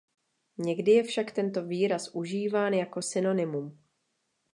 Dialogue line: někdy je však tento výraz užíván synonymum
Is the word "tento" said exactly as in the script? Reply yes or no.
yes